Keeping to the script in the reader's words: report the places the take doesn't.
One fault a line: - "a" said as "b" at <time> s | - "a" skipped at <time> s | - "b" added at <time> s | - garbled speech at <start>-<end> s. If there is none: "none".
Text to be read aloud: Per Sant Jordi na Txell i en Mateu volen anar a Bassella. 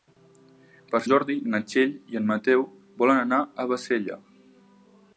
- "Sant" skipped at 1.0 s